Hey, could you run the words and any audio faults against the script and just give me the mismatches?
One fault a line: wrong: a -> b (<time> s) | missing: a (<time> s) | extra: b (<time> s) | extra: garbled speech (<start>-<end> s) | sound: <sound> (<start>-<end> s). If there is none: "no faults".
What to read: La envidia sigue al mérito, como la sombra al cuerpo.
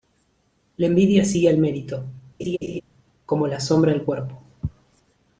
sound: laugh (2.4-2.8 s)